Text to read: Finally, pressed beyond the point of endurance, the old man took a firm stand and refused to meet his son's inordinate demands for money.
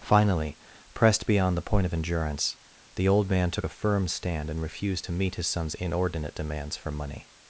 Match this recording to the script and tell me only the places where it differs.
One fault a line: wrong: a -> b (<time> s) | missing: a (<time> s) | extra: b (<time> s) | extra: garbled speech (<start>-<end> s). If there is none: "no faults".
no faults